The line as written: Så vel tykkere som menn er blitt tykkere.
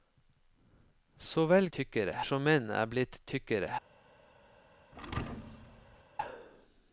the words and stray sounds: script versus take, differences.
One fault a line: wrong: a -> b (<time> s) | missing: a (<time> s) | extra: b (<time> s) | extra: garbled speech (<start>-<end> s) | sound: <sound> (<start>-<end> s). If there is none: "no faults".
sound: thud (4.9-6.0 s)